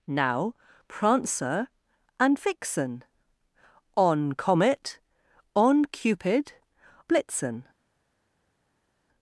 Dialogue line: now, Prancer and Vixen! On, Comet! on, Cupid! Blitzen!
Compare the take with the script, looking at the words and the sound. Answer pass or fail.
pass